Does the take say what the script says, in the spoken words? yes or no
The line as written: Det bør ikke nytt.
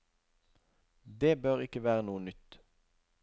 no